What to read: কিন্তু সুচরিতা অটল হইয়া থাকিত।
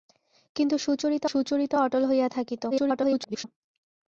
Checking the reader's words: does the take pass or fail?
fail